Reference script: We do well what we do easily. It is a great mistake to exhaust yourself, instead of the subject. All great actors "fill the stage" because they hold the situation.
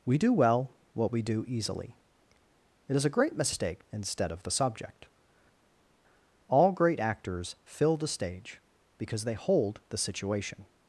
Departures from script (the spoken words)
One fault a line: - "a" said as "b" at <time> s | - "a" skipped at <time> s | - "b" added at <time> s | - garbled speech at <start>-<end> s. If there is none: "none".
- "to exhaust yourself" skipped at 3.8 s